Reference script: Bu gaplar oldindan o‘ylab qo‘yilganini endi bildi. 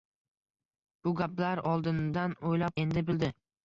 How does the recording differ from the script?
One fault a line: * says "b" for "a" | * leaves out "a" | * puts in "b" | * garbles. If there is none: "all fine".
* leaves out "qo‘yilganini"